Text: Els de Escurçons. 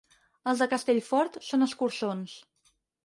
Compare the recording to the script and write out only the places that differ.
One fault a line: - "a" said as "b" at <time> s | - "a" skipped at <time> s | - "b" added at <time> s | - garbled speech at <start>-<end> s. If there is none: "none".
- "Castellfort són" added at 0.7 s